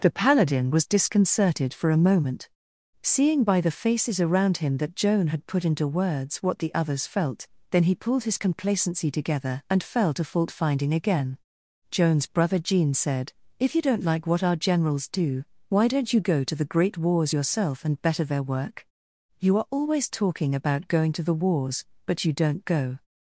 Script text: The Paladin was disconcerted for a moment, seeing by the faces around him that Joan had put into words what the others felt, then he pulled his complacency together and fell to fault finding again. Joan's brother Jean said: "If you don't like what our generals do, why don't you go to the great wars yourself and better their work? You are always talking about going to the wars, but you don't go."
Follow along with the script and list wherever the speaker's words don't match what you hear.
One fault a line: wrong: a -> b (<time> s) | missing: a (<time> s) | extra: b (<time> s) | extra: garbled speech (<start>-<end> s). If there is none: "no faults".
no faults